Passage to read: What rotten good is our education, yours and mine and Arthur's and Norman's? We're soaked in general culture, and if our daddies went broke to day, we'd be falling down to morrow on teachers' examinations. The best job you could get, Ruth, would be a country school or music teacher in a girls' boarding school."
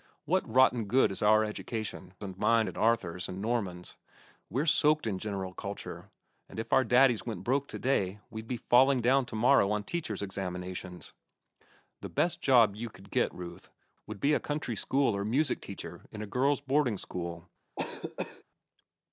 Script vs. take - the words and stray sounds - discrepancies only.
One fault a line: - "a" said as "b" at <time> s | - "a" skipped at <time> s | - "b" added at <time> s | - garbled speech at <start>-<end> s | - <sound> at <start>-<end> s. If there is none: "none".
- "yours" skipped at 2.1 s
- cough at 17.8-18.4 s